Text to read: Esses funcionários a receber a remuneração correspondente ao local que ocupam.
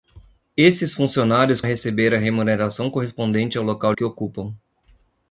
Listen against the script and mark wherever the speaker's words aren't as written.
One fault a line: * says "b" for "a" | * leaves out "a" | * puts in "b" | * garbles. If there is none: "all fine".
all fine